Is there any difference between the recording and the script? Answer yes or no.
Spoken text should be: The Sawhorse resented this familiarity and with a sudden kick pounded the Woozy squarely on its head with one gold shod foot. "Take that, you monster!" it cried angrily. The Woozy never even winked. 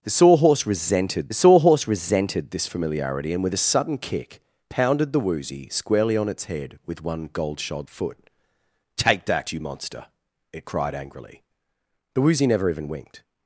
yes